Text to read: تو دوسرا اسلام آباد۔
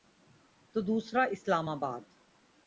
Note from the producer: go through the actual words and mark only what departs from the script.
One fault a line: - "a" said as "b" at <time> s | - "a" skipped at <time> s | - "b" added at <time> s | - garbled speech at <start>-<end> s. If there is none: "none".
none